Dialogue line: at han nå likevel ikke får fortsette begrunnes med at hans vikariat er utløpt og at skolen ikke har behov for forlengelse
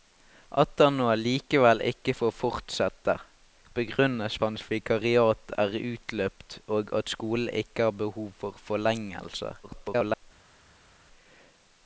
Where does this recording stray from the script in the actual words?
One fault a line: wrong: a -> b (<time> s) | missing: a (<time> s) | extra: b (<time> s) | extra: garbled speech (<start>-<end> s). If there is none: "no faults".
missing: med at (4.4 s)
extra: garbled speech (9.6-10.2 s)